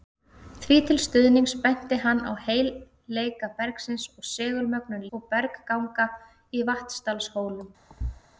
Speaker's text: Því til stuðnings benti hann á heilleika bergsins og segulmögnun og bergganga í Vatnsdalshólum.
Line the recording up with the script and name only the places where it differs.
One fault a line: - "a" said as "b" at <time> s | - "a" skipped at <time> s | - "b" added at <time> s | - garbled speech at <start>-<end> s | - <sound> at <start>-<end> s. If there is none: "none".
- thud at 7.9-8.2 s